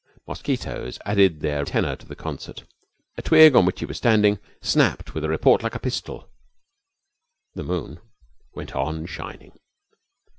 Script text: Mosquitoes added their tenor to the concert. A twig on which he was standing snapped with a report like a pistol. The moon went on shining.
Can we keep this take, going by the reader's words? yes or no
yes